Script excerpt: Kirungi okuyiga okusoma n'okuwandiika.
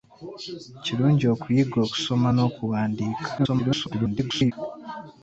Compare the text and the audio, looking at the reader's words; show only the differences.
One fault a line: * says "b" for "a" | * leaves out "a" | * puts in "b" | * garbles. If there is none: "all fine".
* garbles